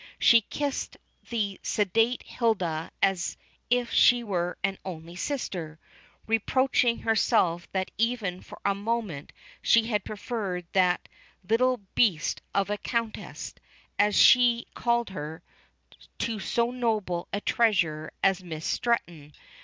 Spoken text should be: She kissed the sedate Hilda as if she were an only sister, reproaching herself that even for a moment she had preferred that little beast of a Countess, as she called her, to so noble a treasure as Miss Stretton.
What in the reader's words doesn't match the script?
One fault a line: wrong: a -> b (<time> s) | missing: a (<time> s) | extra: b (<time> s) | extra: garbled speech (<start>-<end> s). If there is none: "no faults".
no faults